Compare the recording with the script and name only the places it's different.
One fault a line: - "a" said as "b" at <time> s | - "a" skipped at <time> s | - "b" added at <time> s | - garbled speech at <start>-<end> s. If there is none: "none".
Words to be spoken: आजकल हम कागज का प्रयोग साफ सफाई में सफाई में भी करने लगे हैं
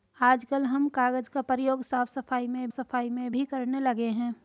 none